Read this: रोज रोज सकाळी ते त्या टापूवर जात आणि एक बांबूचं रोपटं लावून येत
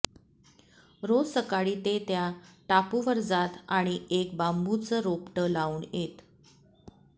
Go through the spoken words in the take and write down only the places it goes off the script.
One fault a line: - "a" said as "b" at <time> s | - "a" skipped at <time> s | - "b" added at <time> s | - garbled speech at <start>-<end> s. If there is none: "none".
- "रोज" skipped at 1.3 s